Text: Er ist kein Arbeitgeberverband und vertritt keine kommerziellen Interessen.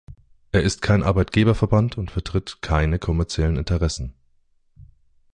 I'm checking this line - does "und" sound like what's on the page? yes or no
yes